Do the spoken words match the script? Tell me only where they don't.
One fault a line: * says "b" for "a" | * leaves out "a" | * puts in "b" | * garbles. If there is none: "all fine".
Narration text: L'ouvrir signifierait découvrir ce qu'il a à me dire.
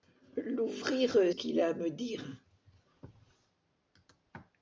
* leaves out "signifierait découvrir ce"